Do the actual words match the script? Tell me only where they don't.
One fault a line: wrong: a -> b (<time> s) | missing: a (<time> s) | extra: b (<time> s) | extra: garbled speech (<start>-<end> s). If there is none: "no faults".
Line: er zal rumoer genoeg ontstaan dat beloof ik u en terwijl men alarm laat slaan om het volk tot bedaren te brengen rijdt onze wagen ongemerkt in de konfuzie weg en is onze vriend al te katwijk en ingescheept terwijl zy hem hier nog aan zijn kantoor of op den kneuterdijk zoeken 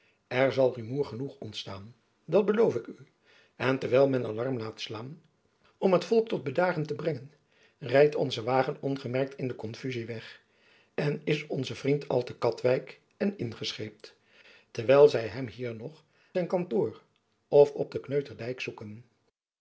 missing: aan (16.0 s)